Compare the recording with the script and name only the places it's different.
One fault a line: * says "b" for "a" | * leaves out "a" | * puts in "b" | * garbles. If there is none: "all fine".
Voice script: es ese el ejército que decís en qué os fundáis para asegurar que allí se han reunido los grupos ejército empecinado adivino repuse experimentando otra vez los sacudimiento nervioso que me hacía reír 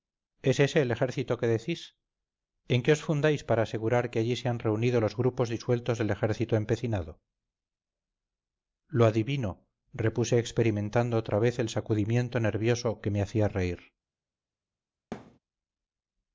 * puts in "disueltos del"
* puts in "lo"
* says "el" for "los"